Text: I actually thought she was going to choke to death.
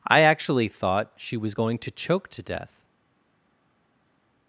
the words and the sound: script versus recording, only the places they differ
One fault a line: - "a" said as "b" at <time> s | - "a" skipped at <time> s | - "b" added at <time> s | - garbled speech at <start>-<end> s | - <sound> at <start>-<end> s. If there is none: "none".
none